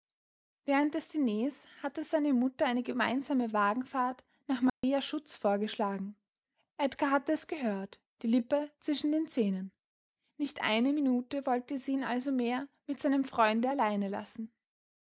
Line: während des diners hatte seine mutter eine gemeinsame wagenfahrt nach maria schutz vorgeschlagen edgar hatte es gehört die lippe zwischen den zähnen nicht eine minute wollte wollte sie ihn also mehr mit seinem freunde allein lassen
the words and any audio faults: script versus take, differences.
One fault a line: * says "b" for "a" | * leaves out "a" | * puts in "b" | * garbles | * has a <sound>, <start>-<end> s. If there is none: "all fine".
* has a dropout, 4.7-4.8 s
* leaves out "wollte"